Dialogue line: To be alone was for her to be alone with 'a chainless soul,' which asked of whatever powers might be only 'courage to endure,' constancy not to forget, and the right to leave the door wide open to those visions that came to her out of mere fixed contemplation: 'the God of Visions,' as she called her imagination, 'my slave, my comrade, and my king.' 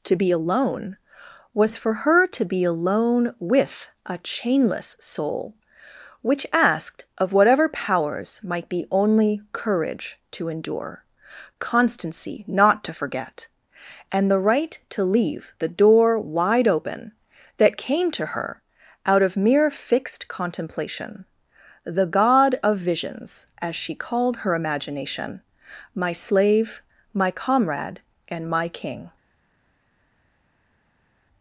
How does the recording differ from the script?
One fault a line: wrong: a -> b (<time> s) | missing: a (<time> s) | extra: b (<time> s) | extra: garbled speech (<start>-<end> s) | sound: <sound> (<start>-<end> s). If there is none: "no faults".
missing: to those visions (17.1 s)